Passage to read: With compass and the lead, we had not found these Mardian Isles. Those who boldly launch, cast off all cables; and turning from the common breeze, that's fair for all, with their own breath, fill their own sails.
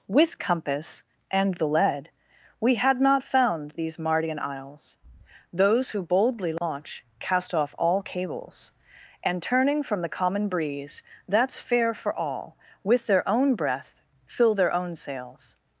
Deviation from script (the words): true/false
false